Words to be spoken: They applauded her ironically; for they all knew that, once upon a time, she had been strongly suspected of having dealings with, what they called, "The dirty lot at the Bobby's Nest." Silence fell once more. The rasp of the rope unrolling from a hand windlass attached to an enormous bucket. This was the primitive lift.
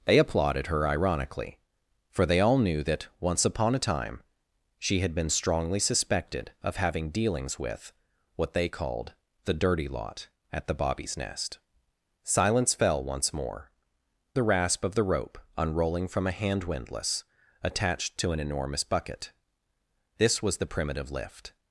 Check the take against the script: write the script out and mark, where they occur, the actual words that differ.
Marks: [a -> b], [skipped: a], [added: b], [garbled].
They applauded her ironically; for they all knew that, once upon a time, she had been strongly suspected of having dealings with, what they called, "The dirty lot at the Bobby's Nest." Silence fell once more. The rasp of the rope unrolling from a hand windlass attached to an enormous bucket. This was the primitive lift.